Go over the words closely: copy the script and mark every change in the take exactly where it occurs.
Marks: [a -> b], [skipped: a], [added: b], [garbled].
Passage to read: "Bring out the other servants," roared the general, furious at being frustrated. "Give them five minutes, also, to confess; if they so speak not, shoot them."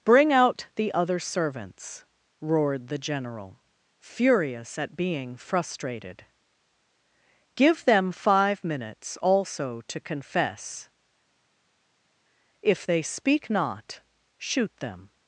"Bring out the other servants," roared the general, furious at being frustrated. "Give them five minutes, also, to confess; if they [skipped: so] speak not, shoot them."